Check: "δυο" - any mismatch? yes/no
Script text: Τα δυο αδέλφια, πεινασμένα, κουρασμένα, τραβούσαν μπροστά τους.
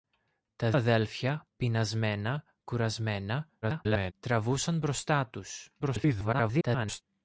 yes